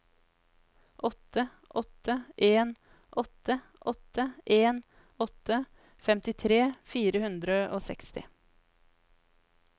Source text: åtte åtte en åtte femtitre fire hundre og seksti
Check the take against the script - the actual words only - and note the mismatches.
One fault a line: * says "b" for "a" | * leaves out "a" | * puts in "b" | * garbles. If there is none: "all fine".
* puts in "åtte en åtte"